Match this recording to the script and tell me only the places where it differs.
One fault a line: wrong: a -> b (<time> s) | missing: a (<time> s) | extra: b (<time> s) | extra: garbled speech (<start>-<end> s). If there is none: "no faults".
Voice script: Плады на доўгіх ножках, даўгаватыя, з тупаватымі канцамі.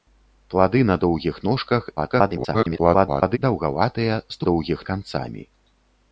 extra: garbled speech (2.0-3.4 s)
wrong: тупаватымі -> доўгіх (4.5 s)